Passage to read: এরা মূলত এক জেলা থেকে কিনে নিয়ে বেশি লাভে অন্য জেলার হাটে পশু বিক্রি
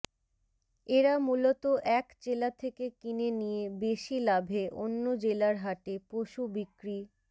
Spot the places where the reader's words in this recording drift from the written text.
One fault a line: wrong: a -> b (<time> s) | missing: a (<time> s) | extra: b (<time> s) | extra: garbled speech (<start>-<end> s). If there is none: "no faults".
no faults